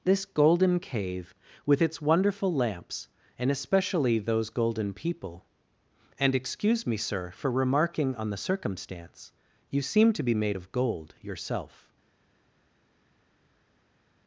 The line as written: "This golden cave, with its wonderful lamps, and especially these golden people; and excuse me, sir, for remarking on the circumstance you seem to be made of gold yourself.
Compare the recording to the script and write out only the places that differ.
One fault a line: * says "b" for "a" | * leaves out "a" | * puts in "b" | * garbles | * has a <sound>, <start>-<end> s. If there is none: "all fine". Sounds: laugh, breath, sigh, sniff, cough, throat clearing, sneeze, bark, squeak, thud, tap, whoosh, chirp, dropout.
* says "those" for "these"